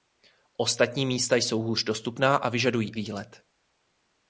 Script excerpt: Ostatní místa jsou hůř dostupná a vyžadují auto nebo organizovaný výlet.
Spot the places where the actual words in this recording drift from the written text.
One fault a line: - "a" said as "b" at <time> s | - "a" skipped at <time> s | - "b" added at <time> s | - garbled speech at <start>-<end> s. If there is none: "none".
- "auto nebo organizovaný" skipped at 3.0 s